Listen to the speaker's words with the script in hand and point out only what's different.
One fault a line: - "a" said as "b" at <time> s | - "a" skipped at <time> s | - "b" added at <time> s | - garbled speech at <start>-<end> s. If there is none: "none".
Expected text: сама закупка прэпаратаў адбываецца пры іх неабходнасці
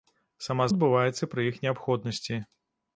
- "закупка прэпаратаў" skipped at 0.7 s